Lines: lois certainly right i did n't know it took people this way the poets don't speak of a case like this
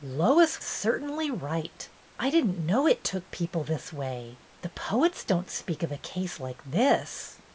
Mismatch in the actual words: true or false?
false